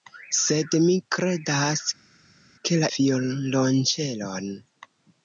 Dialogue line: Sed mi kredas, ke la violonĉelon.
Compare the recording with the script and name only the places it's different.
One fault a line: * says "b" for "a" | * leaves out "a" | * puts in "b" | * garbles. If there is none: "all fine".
all fine